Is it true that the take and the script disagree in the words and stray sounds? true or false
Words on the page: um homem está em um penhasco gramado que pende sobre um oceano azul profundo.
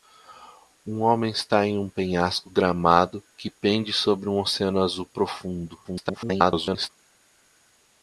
true